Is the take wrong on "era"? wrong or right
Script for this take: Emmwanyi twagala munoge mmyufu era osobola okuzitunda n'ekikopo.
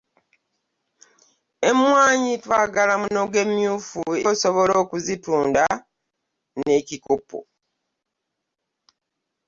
wrong